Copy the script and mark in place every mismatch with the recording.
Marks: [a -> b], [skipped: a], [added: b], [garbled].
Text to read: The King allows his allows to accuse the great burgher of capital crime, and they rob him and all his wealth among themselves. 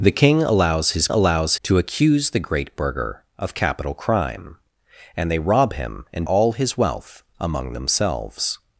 The King allows his allows to accuse the great burgher of capital crime, and they rob him and all his wealth among themselves.